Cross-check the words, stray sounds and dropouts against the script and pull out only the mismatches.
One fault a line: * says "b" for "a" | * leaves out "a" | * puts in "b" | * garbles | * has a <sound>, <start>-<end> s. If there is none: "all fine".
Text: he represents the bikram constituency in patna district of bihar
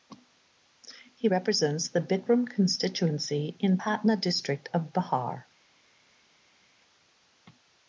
all fine